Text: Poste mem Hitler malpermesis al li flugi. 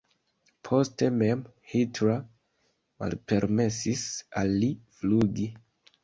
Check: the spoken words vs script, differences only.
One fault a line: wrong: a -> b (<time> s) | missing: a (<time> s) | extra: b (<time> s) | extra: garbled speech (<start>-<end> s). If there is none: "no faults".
no faults